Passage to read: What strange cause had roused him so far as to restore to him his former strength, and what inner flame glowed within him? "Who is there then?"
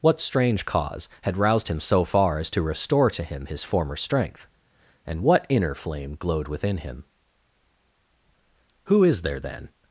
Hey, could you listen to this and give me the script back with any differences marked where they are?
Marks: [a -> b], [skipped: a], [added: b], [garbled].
What strange cause had roused him so far as to restore to him his former strength, and what inner flame glowed within him? "Who is there then?"